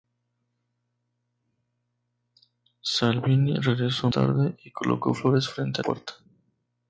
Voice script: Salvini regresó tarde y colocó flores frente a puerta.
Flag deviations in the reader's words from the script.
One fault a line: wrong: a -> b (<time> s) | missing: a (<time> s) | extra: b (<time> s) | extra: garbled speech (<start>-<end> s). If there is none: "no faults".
no faults